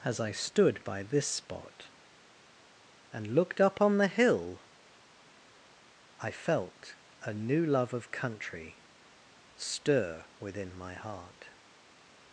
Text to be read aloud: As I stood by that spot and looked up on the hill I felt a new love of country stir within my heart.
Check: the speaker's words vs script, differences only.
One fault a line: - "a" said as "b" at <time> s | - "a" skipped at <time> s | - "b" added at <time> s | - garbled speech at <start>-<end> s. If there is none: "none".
- "that" said as "this" at 1.0 s